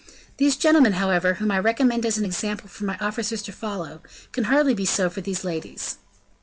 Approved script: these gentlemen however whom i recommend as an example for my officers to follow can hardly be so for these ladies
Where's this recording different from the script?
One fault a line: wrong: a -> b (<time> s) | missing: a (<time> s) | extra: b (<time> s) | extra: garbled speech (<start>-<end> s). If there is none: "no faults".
no faults